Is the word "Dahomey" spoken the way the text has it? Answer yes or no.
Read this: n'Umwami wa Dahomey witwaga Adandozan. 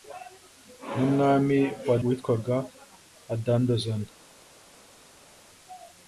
no